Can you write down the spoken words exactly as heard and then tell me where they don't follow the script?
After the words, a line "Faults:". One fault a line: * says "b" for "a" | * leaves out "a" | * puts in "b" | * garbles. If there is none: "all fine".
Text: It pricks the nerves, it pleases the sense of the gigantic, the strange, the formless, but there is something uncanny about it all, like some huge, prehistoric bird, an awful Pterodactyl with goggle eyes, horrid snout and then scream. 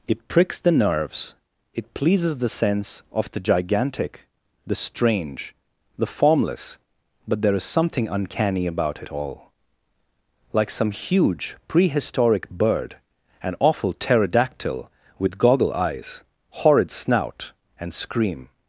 It pricks the nerves, it pleases the sense of the gigantic, the strange, the formless, but there is something uncanny about it all, like some huge, prehistoric bird, an awful Pterodactyl with goggle eyes, horrid snout and scream.
Faults:
* leaves out "then"